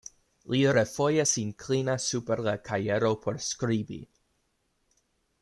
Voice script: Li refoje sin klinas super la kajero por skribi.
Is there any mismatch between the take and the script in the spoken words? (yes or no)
no